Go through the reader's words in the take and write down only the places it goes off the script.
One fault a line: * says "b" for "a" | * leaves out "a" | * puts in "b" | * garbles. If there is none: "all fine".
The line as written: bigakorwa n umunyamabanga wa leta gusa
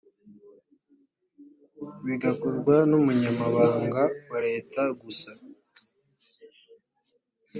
all fine